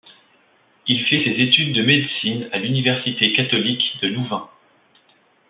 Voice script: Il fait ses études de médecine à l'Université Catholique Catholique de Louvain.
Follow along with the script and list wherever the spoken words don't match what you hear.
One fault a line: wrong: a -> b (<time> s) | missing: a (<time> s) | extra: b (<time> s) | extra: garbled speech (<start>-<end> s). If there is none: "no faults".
missing: Catholique (4.0 s)